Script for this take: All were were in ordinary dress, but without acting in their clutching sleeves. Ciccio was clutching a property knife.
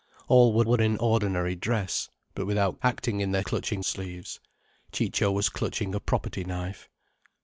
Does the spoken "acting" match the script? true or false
true